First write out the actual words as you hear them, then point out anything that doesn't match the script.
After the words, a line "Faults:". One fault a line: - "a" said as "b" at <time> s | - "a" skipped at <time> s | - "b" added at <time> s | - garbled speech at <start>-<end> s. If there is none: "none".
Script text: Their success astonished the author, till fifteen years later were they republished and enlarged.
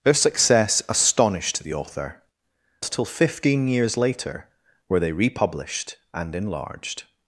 Their success astonished the author, till fifteen years later were they republished and enlarged.
Faults:
none